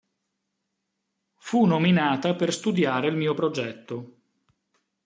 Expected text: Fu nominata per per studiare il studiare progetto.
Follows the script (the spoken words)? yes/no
no